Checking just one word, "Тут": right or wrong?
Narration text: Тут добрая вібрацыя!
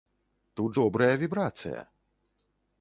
right